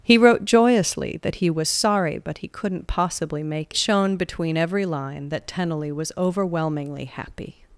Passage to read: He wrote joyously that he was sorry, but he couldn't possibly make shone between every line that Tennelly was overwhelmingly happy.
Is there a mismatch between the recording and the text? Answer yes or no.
no